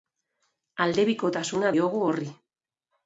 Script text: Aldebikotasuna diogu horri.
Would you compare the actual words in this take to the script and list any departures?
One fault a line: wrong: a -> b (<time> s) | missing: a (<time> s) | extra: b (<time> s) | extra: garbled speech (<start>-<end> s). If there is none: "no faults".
no faults